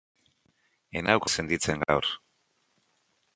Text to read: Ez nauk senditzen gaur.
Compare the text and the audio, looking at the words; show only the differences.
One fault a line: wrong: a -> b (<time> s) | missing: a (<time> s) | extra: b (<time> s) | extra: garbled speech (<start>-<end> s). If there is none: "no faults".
no faults